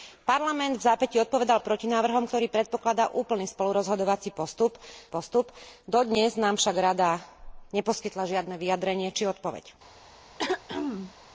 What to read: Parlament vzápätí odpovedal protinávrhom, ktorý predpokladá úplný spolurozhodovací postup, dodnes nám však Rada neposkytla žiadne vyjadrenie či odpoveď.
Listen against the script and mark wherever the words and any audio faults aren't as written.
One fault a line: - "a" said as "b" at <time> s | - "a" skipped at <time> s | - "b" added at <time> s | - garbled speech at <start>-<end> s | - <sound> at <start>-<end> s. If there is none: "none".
- "postup" added at 5.1 s
- throat clearing at 10.4-11.1 s